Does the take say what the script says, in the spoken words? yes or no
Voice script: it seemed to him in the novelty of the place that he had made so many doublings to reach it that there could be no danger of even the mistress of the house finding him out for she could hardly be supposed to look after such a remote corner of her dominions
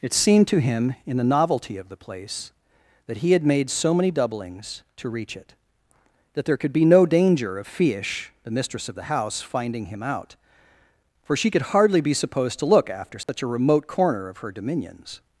no